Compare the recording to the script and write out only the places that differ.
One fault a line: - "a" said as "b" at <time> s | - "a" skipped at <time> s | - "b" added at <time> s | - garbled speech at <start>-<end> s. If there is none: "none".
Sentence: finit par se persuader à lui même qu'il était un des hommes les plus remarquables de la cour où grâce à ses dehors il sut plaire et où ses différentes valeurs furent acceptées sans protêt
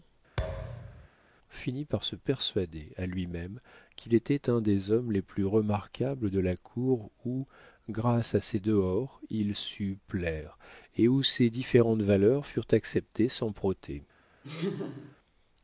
none